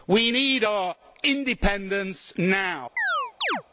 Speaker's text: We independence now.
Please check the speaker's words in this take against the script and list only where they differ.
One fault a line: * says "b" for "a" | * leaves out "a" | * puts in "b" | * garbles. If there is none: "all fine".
* puts in "need our"